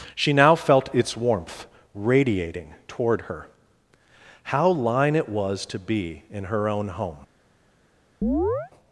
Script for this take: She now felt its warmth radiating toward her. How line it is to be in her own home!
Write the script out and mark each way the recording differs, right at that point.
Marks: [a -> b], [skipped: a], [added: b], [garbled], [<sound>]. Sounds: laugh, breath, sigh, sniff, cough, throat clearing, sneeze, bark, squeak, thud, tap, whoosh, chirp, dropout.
She now felt its warmth radiating toward her. How line it [is -> was] to be in her own home! [chirp]